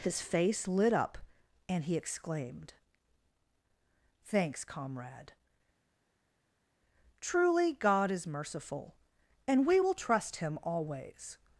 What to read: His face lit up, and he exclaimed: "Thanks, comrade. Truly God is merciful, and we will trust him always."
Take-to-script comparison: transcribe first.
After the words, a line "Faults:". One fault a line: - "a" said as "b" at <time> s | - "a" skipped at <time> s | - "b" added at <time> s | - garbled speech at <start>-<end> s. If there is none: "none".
His face lit up, and he exclaimed: "Thanks, comrade. Truly God is merciful, and we will trust him always."
Faults:
none